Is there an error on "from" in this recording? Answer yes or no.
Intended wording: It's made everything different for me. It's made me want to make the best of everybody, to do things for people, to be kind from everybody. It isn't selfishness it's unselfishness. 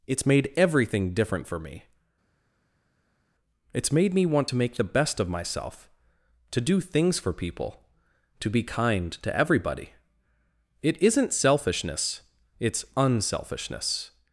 yes